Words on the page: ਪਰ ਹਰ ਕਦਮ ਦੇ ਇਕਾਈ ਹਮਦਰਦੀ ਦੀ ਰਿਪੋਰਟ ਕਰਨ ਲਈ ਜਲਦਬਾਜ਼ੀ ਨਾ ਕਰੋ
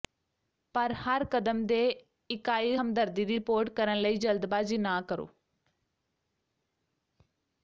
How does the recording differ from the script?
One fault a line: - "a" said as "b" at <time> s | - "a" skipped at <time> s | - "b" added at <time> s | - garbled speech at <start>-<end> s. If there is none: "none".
none